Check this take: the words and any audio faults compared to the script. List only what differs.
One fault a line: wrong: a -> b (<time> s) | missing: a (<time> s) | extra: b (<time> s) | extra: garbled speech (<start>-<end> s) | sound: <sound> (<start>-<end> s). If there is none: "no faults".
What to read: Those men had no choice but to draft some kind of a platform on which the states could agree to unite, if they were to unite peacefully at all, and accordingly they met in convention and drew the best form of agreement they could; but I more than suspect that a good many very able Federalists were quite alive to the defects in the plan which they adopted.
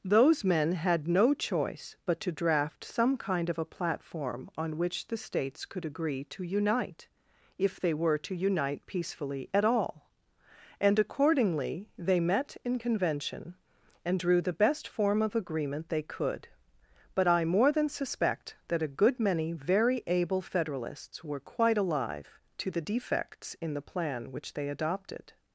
no faults